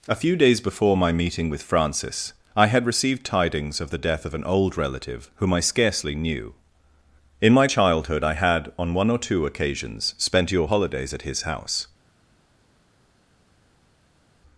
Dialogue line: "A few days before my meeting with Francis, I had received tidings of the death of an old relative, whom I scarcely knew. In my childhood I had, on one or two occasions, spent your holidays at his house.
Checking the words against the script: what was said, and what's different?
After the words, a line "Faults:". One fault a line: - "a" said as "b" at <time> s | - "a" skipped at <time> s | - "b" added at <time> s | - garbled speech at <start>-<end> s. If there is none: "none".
"A few days before my meeting with Francis, I had received tidings of the death of an old relative, whom I scarcely knew. In my childhood I had, on one or two occasions, spent your holidays at his house.
Faults:
none